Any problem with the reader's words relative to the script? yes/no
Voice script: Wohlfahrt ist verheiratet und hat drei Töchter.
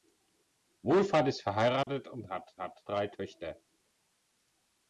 yes